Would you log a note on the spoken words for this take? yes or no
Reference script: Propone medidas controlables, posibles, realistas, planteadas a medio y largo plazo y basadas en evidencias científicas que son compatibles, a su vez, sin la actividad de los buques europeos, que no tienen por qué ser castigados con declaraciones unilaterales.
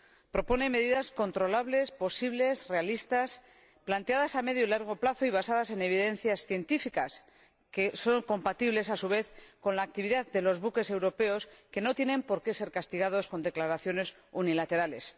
yes